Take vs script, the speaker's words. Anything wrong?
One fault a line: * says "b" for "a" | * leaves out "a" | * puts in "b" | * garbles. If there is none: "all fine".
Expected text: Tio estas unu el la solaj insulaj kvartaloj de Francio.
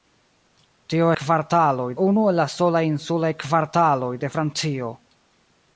* says "kvartaloj" for "estas"